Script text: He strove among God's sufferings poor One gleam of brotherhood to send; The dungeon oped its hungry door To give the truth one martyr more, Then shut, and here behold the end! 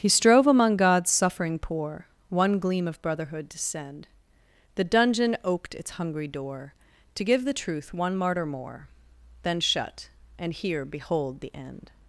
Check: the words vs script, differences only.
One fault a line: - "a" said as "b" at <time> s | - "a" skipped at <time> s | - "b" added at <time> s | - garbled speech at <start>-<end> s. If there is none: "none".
- "sufferings" said as "suffering" at 1.1 s